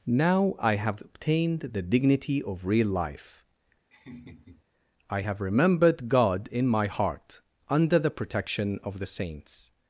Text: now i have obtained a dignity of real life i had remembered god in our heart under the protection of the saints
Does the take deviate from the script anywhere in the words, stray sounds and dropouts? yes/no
yes